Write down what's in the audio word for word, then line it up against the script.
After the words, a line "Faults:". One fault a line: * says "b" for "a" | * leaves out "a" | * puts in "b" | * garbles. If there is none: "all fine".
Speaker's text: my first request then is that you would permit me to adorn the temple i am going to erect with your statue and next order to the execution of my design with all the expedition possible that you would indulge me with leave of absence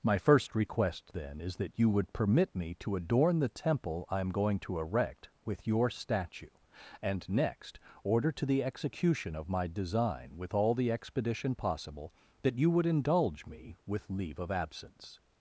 my first request then is that you would permit me to adorn the temple i am going to erect with your statue and next order to the execution of my design with all the expedition possible that you would indulge me with leave of absence
Faults:
all fine